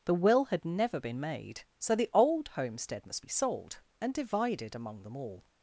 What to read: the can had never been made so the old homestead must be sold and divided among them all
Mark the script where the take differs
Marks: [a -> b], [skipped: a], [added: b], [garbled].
the [can -> will] had never been made so the old homestead must be sold and divided among them all